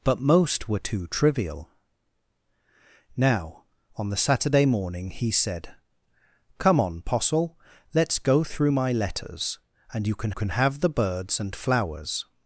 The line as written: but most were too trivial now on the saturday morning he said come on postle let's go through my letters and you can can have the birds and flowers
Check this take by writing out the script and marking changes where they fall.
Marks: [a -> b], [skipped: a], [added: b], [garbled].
but most were too trivial now on the saturday morning he said come on postle let's go through my letters and you can can have the birds and flowers